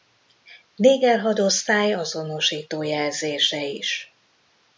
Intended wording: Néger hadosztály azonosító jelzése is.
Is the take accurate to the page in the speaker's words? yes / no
yes